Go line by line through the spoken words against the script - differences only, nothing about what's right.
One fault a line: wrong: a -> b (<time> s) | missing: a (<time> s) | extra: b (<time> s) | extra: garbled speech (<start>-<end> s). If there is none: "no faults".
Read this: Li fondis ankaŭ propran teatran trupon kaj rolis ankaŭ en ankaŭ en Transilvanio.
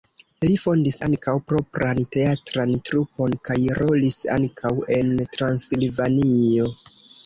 missing: ankaŭ en (5.1 s)